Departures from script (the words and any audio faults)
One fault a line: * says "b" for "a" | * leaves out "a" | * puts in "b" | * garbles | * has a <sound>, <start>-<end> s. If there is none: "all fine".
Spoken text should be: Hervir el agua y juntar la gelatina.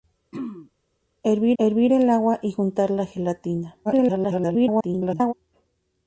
* has a throat clearing, 0.3-0.7 s
* puts in "hervir"
* garbles